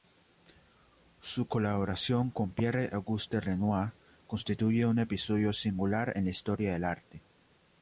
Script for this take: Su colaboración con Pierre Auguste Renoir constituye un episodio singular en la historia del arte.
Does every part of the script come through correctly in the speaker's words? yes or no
yes